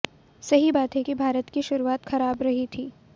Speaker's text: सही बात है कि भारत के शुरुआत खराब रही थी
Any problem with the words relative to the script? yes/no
yes